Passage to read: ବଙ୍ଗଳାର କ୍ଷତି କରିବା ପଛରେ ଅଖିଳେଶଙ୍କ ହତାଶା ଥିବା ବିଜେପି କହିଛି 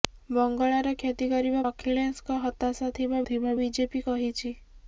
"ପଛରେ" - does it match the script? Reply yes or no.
no